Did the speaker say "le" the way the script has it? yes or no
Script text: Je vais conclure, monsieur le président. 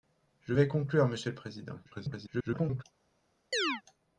yes